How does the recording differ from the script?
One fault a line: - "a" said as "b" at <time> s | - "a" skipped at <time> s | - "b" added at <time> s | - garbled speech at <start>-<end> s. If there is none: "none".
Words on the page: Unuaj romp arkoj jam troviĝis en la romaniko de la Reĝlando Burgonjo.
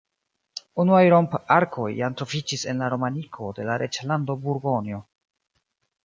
none